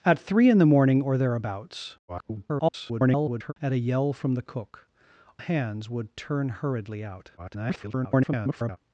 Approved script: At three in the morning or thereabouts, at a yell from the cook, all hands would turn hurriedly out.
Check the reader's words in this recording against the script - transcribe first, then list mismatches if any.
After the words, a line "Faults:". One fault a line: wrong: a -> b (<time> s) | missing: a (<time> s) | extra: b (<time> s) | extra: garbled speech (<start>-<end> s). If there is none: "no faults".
At three in the morning or thereabouts, [garbled] at a yell from the cook, hands would turn hurriedly out. [garbled]
Faults:
extra: garbled speech (2.1-3.5 s)
missing: all (4.9 s)
extra: garbled speech (7.4-8.8 s)